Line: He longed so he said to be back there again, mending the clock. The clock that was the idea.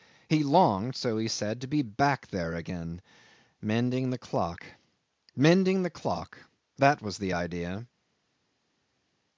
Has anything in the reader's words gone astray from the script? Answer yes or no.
yes